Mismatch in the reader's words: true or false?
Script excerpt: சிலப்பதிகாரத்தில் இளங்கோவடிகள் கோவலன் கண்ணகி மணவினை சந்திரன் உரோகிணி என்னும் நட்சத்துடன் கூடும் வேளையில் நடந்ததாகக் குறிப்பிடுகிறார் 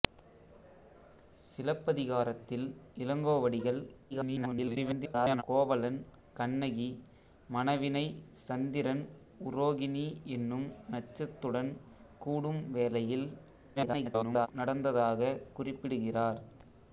true